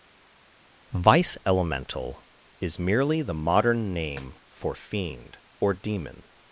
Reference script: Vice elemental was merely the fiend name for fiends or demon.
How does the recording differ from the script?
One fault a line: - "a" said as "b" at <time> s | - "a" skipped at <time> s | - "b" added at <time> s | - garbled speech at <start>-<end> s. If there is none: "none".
- "was" said as "is" at 2.6 s
- "fiend" said as "modern" at 3.3 s
- "fiends" said as "fiend" at 4.7 s